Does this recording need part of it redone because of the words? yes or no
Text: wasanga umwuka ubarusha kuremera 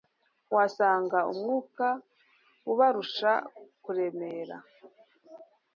no